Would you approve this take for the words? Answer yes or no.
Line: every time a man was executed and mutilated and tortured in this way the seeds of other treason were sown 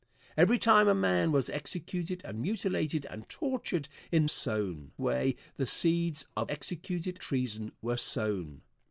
no